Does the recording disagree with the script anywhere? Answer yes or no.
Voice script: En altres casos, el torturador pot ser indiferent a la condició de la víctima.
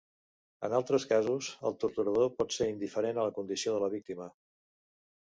no